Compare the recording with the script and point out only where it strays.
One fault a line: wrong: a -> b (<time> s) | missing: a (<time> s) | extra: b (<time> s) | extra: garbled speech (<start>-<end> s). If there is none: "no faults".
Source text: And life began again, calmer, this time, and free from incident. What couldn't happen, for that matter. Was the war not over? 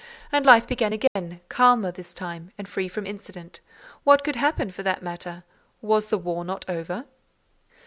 wrong: couldn't -> could (4.2 s)